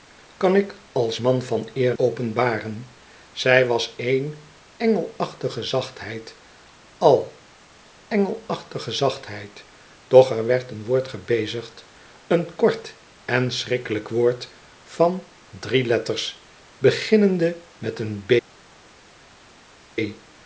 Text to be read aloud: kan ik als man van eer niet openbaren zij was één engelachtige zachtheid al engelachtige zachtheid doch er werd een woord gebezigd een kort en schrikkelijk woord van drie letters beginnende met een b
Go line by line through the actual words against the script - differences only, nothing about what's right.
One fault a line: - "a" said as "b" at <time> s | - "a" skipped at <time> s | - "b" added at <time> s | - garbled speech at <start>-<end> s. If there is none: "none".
- "niet" skipped at 1.9 s